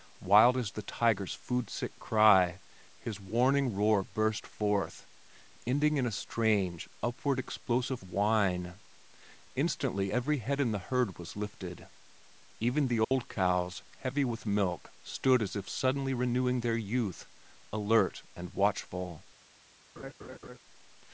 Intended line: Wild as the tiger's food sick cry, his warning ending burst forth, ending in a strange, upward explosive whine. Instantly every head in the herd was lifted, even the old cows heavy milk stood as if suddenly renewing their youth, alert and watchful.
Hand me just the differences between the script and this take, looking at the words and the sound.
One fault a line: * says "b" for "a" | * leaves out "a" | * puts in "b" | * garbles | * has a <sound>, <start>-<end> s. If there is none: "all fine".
* says "roar" for "ending"
* has a dropout, 13.0-13.1 s
* puts in "with"
* has a laugh, 20.0-20.6 s